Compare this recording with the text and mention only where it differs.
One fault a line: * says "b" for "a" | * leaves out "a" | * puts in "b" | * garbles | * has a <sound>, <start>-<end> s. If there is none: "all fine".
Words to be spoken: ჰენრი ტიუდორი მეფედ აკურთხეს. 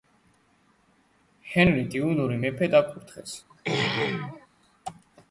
* has a throat clearing, 3.5-4.5 s